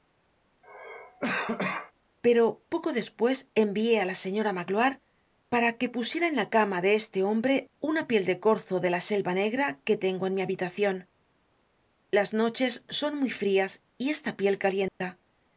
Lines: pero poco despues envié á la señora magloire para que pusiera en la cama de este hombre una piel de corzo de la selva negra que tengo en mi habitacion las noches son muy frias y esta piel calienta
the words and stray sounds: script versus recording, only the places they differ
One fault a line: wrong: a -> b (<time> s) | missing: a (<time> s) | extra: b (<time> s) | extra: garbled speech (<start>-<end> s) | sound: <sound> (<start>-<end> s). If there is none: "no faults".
sound: cough (0.6-1.9 s)
sound: dropout (14.9-15.0 s)